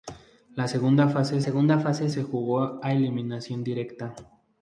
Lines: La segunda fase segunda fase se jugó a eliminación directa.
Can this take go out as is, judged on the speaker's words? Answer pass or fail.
pass